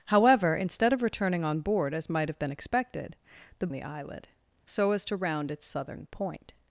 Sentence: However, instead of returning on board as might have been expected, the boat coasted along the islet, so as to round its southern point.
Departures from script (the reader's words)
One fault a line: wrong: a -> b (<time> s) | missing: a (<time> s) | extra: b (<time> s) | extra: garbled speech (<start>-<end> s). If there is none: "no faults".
missing: boat coasted along (3.7 s)